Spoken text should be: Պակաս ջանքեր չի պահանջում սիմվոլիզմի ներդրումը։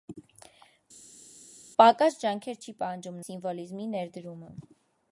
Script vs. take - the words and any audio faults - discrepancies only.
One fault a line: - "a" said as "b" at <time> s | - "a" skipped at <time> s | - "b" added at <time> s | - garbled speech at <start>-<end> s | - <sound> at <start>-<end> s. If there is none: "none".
none